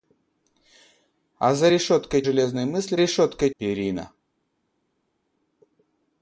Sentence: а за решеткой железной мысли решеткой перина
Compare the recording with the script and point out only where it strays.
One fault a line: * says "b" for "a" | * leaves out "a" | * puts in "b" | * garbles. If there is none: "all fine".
all fine